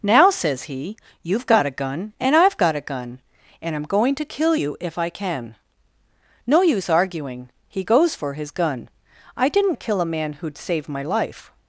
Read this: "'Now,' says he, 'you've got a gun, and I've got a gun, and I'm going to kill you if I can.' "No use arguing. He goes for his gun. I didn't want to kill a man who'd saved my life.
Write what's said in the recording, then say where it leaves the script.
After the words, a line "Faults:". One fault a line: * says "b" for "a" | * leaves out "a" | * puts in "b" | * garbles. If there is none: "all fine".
"'Now,' says he, 'you've got a gun, and I've got a gun, and I'm going to kill you if I can.' "No use arguing. He goes for his gun. I didn't to kill a man who'd saved my life.
Faults:
* leaves out "want"